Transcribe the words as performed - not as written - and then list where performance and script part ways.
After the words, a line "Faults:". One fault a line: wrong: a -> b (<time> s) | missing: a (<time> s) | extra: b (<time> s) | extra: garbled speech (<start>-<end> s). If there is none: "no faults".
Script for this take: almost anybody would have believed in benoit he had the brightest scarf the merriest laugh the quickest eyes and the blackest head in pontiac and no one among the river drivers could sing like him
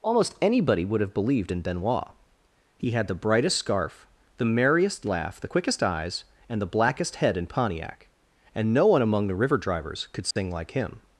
almost anybody would have believed in benoit he had the brightest scarf the merriest laugh the quickest eyes and the blackest head in pontiac and no one among the river drivers could sing like him
Faults:
no faults